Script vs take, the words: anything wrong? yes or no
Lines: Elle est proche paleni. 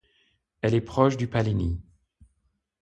yes